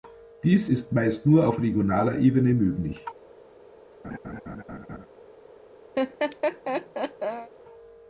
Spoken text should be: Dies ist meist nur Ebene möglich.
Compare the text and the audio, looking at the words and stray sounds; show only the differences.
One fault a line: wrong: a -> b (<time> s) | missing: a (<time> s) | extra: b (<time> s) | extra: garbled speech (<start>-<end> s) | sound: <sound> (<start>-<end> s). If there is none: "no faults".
extra: auf regionaler (1.5 s)
sound: laugh (4.0-5.1 s)
sound: laugh (6.0-7.5 s)